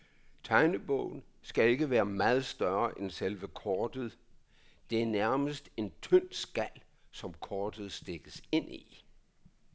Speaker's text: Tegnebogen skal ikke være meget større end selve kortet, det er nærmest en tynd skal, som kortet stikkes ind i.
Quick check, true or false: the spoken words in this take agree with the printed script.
true